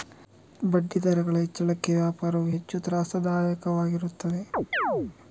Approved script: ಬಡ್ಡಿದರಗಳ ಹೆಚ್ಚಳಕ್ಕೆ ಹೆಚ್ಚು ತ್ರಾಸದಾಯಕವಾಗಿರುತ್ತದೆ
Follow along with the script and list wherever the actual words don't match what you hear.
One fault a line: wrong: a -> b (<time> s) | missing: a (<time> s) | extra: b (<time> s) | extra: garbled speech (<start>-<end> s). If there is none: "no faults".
extra: ವ್ಯಾಪಾರವು (2.0 s)